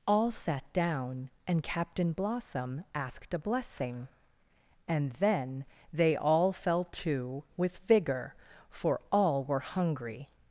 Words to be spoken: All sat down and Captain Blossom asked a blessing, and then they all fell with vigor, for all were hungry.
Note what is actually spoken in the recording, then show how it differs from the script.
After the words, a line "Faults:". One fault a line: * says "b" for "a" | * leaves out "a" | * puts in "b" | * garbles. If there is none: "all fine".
All sat down and Captain Blossom asked a blessing, and then they all fell to with vigor, for all were hungry.
Faults:
* puts in "to"